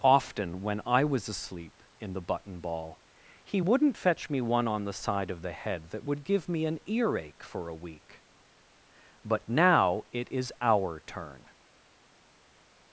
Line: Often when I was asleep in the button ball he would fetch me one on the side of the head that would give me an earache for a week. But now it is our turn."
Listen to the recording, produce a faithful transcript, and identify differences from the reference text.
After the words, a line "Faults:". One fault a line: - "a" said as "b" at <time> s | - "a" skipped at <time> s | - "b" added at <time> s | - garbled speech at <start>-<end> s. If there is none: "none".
Often when I was asleep in the button ball he wouldn't fetch me one on the side of the head that would give me an earache for a week. But now it is our turn."
Faults:
- "would" said as "wouldn't" at 3.6 s